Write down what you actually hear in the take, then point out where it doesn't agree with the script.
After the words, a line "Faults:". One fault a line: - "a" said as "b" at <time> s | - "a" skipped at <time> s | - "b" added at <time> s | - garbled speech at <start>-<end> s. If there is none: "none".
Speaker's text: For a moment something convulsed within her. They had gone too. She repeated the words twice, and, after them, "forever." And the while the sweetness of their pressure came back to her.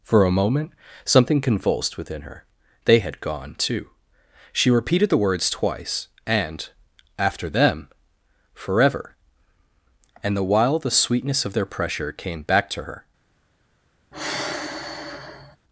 For a moment something convulsed within her. They had gone too. She repeated the words twice, and, after them, "forever." And the while the sweetness of their pressure came back to her.
Faults:
none